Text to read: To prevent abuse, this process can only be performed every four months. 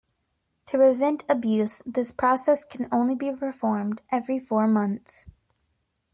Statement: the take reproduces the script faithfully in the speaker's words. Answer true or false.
true